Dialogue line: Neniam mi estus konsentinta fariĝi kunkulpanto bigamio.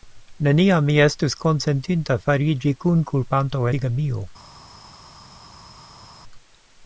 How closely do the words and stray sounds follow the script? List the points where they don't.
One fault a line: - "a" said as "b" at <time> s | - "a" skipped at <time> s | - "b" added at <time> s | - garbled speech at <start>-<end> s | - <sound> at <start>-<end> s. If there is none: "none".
none